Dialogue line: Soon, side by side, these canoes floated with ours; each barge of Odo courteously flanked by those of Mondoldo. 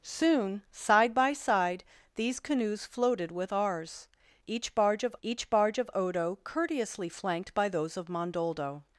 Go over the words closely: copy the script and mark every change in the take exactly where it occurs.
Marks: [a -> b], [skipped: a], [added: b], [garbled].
Soon, side by side, these canoes floated with ours; each barge of [added: each barge of] Odo courteously flanked by those of Mondoldo.